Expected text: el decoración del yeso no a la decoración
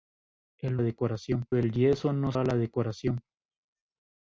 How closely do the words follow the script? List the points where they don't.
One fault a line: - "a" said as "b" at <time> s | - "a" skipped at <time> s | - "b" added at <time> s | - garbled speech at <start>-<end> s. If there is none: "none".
none